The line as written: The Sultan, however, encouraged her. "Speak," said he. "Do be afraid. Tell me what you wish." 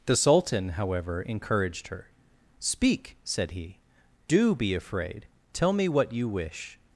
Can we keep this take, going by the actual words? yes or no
yes